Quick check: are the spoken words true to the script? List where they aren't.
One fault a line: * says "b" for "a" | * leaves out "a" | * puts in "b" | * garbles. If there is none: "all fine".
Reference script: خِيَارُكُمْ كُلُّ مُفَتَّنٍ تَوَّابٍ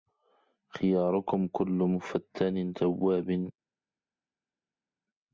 all fine